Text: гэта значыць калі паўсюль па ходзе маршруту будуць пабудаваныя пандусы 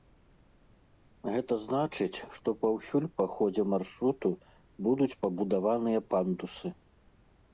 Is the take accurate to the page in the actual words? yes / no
no